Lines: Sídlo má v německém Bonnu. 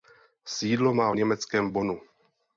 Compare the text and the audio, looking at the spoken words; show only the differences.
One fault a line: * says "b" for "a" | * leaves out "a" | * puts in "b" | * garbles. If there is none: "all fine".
all fine